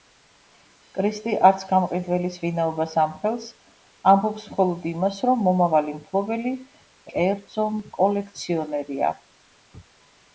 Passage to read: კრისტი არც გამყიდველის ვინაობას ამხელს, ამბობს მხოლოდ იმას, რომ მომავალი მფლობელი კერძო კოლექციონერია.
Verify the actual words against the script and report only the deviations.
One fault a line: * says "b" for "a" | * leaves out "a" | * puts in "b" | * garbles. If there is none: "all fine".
all fine